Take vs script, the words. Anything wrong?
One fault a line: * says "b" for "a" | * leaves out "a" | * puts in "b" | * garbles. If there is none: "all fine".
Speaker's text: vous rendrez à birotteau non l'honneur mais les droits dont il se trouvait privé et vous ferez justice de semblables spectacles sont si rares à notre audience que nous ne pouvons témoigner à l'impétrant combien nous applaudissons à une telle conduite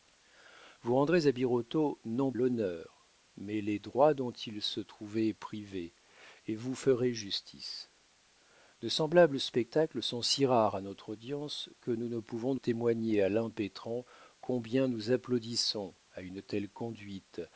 all fine